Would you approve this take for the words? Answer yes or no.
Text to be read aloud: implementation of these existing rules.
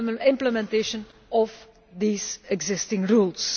yes